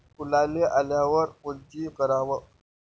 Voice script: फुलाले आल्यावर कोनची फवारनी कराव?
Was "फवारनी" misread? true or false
true